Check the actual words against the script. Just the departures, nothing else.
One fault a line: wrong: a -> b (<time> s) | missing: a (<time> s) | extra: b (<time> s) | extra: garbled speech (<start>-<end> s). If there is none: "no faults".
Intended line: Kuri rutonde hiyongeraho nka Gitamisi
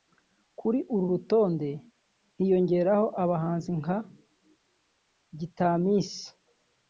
extra: uru (0.9 s)
extra: abahanzi (3.2 s)